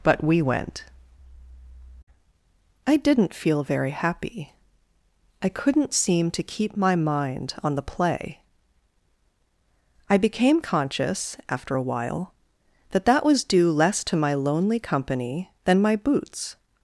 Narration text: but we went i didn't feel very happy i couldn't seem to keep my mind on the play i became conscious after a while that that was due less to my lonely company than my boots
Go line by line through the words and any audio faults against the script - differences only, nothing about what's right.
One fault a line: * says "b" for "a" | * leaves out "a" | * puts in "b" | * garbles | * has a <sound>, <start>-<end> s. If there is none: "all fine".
all fine